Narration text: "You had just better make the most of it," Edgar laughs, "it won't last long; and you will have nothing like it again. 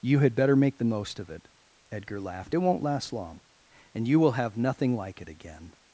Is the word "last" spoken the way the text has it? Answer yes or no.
yes